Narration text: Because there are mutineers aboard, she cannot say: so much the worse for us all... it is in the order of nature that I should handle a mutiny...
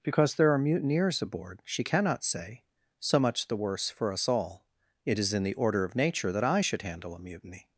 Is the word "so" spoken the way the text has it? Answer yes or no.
yes